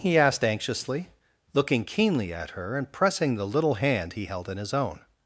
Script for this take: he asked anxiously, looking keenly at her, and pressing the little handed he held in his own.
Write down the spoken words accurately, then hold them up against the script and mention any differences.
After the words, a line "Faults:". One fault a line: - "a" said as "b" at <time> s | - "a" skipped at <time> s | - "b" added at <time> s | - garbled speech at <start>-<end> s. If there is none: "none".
he asked anxiously, looking keenly at her, and pressing the little hand he held in his own.
Faults:
- "handed" said as "hand" at 3.7 s